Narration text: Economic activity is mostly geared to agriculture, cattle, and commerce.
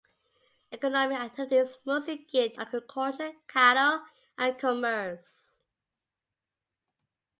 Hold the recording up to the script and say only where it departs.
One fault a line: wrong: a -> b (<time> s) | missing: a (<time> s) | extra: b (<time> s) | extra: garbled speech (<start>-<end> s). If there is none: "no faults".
missing: to (2.5 s)